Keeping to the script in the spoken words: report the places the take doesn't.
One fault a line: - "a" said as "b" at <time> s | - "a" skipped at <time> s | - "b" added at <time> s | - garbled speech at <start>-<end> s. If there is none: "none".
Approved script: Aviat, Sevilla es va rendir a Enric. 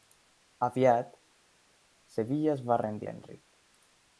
none